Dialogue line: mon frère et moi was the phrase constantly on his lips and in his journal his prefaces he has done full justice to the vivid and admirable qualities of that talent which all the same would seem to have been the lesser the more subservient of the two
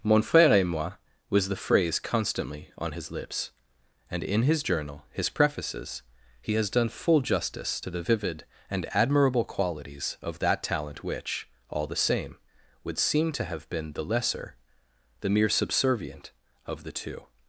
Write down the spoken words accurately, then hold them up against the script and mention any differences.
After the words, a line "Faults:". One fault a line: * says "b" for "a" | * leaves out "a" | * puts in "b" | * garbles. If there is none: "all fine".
mon frère et moi was the phrase constantly on his lips and in his journal his prefaces he has done full justice to the vivid and admirable qualities of that talent which all the same would seem to have been the lesser the mere subservient of the two
Faults:
* says "mere" for "more"